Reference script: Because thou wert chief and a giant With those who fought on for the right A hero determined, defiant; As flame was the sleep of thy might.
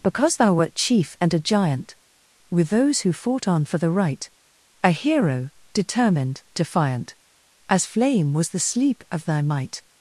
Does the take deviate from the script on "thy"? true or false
false